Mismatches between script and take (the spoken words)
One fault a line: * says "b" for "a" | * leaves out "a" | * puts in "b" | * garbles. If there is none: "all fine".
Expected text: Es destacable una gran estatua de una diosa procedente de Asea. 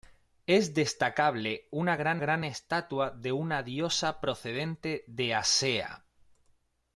* puts in "gran"